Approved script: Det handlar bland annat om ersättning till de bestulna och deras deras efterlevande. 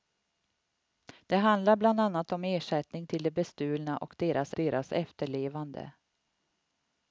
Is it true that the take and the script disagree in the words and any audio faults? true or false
false